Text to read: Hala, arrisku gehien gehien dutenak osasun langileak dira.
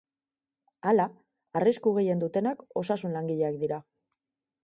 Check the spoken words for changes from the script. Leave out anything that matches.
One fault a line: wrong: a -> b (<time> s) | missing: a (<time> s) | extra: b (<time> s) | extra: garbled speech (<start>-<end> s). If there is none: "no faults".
missing: gehien (2.2 s)